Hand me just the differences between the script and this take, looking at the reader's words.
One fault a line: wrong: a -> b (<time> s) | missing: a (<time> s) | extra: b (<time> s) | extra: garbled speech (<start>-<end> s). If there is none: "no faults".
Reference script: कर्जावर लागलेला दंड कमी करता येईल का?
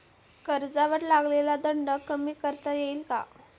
no faults